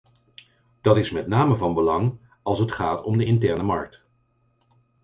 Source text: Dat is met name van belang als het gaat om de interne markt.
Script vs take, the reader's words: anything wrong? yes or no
no